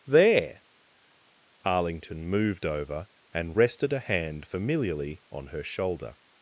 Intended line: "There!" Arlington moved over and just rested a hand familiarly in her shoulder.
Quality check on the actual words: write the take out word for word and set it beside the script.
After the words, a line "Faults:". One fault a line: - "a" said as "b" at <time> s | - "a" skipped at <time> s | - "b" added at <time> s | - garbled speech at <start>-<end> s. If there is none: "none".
"There!" Arlington moved over and rested a hand familiarly on her shoulder.
Faults:
- "just" skipped at 3.6 s
- "in" said as "on" at 5.3 s